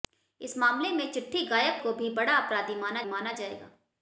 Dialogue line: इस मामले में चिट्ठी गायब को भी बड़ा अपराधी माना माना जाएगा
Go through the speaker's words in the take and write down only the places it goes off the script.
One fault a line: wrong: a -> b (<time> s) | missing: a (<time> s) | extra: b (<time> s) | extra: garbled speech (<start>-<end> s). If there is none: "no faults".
no faults